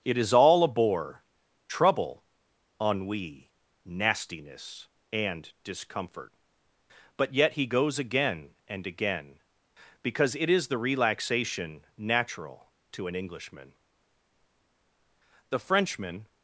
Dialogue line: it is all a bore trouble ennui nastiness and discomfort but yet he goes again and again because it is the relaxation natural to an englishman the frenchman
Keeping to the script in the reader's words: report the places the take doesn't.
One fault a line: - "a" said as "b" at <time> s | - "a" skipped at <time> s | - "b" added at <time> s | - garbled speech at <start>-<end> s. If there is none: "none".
none